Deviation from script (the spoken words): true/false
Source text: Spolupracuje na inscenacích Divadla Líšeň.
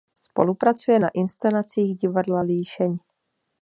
false